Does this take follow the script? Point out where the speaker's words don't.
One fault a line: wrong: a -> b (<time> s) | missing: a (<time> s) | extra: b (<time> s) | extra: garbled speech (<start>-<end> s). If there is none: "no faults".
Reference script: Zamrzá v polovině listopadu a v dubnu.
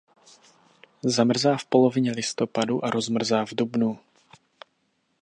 extra: rozmrzá (2.9 s)